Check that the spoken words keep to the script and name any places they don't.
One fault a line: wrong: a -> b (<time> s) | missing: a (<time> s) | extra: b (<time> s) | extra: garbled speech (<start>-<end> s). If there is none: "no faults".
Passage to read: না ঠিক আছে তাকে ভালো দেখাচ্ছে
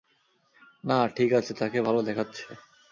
no faults